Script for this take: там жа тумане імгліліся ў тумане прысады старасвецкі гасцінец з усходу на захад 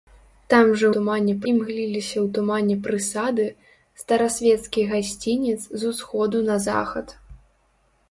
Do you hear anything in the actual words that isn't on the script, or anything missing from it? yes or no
no